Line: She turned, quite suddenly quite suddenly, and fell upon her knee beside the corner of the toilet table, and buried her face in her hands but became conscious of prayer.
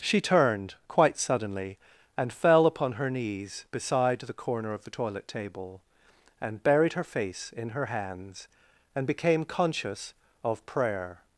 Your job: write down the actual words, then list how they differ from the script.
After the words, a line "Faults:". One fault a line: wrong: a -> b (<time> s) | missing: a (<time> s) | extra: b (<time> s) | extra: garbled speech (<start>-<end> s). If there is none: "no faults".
She turned, quite suddenly, and fell upon her knees beside the corner of the toilet table, and buried her face in her hands and became conscious of prayer.
Faults:
missing: quite suddenly (1.8 s)
wrong: knee -> knees (3.1 s)
wrong: but -> and (8.9 s)